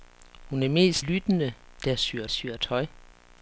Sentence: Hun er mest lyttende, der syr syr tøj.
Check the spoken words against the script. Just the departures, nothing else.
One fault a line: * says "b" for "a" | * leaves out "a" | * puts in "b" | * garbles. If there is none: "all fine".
all fine